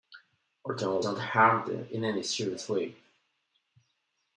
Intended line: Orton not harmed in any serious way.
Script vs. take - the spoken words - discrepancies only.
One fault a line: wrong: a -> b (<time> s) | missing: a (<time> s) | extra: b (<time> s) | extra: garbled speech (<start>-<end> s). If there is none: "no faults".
no faults